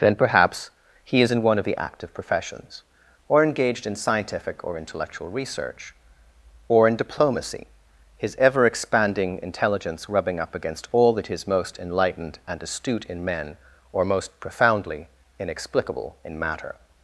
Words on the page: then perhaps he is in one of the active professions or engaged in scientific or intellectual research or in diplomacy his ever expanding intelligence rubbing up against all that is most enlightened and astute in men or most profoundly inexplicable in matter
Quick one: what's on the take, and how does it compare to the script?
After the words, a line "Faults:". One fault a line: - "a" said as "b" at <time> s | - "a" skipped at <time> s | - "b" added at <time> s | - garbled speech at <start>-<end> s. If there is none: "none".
then perhaps he is in one of the active professions or engaged in scientific or intellectual research or in diplomacy his ever expanding intelligence rubbing up against all that is most enlightened and astute in men or most profoundly inexplicable in matter
Faults:
none